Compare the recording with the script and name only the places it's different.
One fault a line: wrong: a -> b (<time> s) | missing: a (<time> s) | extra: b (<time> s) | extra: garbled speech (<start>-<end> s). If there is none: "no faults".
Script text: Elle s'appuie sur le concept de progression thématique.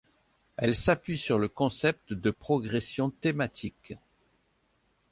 no faults